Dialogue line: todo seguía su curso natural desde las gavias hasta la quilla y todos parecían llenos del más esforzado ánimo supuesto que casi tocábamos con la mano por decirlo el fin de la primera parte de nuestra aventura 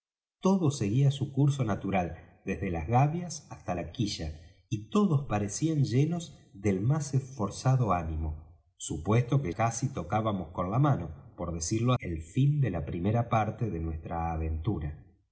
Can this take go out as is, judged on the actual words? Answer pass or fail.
pass